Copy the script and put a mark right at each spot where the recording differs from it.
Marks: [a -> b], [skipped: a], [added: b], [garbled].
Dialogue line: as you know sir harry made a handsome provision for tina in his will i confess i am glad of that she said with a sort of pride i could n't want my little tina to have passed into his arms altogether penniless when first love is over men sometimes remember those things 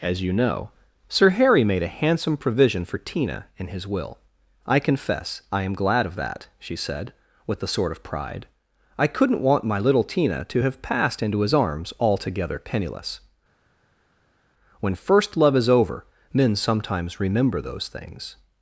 as you know sir harry made a handsome provision for tina in his will i confess i am glad of that she said with a sort of pride i could n't want my little tina to have passed into his arms altogether penniless when first love is over men sometimes remember those things